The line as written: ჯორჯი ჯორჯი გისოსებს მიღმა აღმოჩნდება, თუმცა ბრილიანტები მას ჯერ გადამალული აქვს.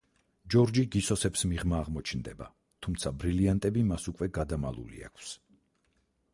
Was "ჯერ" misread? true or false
true